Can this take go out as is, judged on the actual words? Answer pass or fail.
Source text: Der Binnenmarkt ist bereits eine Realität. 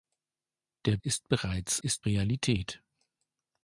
fail